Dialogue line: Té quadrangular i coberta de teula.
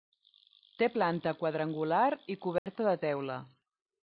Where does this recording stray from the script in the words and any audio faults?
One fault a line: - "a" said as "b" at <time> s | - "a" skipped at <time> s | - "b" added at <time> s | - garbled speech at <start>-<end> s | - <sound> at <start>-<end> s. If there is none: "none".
- "planta" added at 0.9 s
- dropout at 2.6-2.7 s